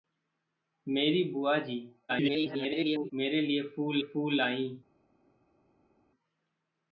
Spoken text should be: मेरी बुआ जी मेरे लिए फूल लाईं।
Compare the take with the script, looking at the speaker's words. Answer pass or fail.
fail